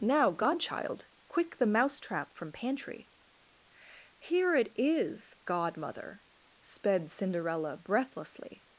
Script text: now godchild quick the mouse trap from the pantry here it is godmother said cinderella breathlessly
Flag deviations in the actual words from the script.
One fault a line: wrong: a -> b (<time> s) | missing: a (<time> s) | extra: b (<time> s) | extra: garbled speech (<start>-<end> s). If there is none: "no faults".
missing: the (2.5 s)
wrong: said -> sped (6.6 s)